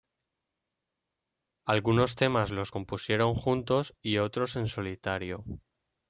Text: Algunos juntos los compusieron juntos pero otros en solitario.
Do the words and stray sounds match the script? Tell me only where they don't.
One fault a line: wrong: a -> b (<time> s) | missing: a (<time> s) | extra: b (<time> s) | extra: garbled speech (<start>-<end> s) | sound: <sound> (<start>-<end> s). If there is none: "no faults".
wrong: juntos -> temas (2.2 s)
wrong: pero -> y (4.0 s)